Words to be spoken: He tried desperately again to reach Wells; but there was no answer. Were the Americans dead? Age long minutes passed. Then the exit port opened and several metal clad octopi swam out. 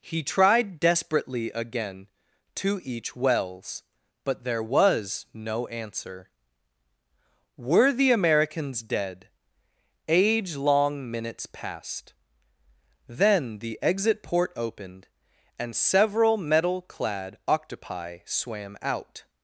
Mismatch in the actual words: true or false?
true